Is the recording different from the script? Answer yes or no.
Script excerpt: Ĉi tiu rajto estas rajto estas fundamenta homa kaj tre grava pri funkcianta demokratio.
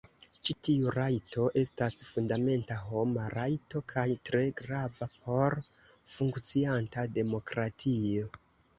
yes